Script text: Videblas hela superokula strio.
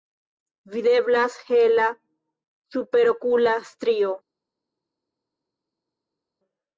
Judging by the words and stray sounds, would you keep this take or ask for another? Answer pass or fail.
pass